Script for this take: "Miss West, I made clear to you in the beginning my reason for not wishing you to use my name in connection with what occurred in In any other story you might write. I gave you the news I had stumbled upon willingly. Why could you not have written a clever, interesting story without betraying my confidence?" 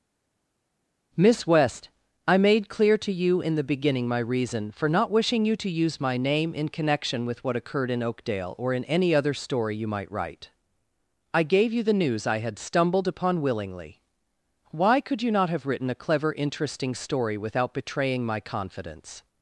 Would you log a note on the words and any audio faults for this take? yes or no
yes